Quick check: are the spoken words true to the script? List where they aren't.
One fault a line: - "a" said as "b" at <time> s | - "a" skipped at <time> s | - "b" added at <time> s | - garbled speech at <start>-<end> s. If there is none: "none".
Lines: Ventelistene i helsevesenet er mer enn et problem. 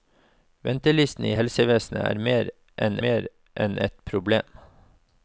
- "mer enn" added at 3.1 s